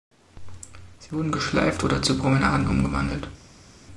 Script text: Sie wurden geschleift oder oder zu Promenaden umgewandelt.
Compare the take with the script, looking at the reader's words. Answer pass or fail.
fail